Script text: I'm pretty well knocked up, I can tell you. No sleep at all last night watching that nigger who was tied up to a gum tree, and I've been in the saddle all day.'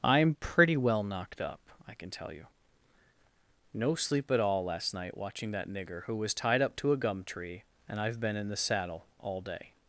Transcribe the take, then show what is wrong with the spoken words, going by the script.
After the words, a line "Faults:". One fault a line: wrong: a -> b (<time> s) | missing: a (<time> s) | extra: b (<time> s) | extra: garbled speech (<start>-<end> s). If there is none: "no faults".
I'm pretty well knocked up, I can tell you. No sleep at all last night watching that nigger who was tied up to a gum tree, and I've been in the saddle all day.'
Faults:
no faults